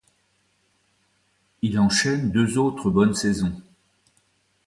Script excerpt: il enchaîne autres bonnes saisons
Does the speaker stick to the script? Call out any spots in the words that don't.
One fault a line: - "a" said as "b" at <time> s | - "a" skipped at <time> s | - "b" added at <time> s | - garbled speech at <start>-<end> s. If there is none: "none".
- "deux" added at 2.3 s